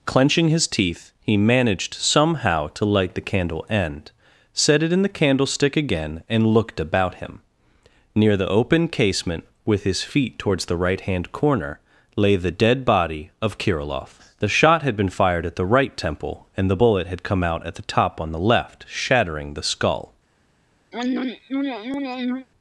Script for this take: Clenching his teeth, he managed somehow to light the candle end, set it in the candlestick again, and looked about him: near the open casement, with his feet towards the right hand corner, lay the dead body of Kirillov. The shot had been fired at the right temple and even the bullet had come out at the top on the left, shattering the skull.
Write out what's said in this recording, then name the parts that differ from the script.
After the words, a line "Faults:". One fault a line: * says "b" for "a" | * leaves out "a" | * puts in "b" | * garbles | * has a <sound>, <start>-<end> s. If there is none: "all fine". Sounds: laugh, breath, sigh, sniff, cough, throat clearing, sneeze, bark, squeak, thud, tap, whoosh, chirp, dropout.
Clenching his teeth, he managed somehow to light the candle end, set it in the candlestick again, and looked about him: near the open casement, with his feet towards the right hand corner, lay the dead body of Kirillov. The shot had been fired at the right temple and the bullet had come out at the top on the left, shattering the skull.
Faults:
* leaves out "even"
* has a throat clearing, 20.9-22.5 s